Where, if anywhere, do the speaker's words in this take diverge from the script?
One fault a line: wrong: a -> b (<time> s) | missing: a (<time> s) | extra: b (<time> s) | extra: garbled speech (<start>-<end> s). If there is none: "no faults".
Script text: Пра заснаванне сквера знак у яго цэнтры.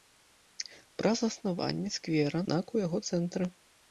no faults